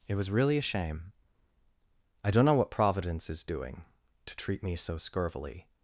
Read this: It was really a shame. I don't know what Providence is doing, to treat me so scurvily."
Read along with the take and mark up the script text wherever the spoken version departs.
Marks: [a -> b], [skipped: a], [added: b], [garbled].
It was really a shame. I don't know what Providence is doing, to treat me so scurvily."